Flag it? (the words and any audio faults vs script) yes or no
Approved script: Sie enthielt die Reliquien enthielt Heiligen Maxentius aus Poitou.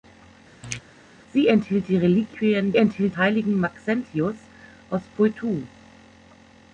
yes